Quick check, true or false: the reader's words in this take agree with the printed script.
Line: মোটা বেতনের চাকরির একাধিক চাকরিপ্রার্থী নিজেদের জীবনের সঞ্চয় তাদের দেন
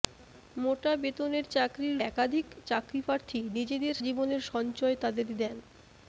true